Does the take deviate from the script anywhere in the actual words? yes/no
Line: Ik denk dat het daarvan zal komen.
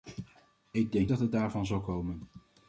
no